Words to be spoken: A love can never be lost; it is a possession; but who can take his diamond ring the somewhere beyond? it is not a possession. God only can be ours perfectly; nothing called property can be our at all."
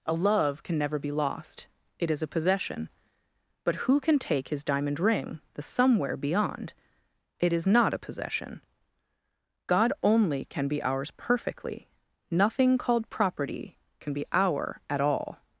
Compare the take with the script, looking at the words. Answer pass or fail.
pass